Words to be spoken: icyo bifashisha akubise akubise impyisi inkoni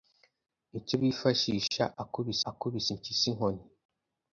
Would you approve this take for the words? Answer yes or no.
yes